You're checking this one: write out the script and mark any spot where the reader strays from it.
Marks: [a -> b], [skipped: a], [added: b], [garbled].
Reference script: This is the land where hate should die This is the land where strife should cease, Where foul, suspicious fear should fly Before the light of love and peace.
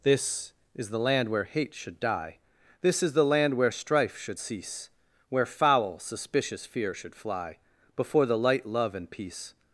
This is the land where hate should die This is the land where strife should cease, Where foul, suspicious fear should fly Before the light [skipped: of] love and peace.